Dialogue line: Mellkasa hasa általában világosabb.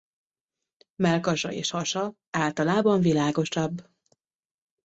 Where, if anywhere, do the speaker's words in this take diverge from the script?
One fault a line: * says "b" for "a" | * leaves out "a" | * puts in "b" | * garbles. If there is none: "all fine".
* puts in "és"